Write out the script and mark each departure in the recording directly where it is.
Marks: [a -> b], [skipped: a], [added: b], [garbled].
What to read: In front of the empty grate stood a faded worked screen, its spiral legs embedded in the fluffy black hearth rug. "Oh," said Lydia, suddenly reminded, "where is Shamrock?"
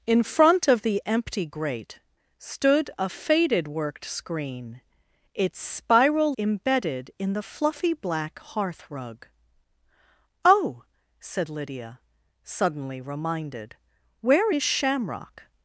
In front of the empty grate stood a faded worked screen, its spiral [skipped: legs] embedded in the fluffy black hearth rug. "Oh," said Lydia, suddenly reminded, "where is Shamrock?"